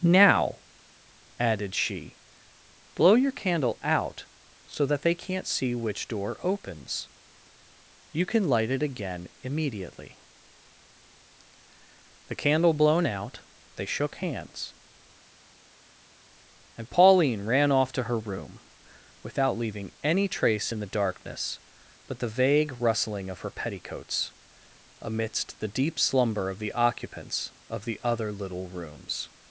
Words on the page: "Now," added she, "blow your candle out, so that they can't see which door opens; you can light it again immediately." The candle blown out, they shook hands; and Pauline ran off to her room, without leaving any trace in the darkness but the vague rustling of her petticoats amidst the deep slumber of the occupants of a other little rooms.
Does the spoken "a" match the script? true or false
false